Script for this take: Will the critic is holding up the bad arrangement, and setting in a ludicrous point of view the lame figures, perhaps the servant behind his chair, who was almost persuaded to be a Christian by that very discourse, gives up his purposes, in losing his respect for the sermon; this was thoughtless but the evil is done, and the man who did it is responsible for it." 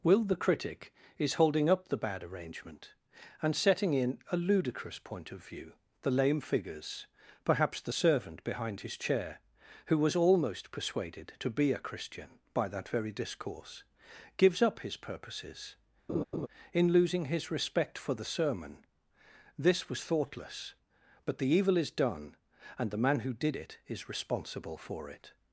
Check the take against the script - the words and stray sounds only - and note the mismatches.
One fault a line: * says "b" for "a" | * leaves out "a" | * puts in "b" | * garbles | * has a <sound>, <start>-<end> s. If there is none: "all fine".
* has a laugh, 16.1-16.5 s